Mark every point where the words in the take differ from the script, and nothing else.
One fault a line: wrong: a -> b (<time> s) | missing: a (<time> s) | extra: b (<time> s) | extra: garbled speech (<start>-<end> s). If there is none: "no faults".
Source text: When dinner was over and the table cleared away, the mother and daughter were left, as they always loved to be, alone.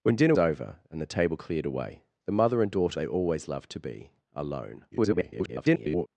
missing: was (0.3 s)
missing: were left as (3.0 s)
extra: garbled speech (4.9-6.1 s)